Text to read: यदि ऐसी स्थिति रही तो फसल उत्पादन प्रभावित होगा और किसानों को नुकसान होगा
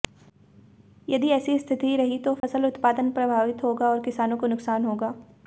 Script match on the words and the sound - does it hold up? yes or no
no